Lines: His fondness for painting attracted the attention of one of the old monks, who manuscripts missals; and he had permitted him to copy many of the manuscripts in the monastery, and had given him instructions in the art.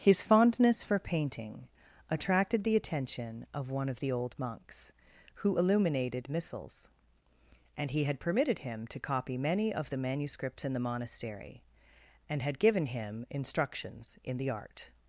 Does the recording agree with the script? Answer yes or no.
no